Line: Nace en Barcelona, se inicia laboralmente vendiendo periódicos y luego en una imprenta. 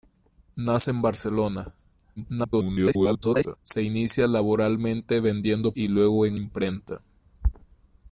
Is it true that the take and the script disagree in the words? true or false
true